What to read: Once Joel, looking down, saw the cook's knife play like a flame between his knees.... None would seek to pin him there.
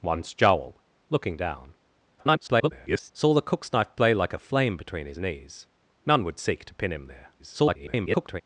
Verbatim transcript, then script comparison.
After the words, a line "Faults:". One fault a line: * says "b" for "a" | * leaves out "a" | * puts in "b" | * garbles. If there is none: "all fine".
Once Joel, looking down, [garbled] saw the cook's knife play like a flame between his knees.... None would seek to pin him there. [garbled]
Faults:
* garbles
* garbles